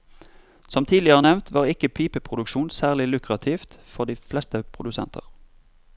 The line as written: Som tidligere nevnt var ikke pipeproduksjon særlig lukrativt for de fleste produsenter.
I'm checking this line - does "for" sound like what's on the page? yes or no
yes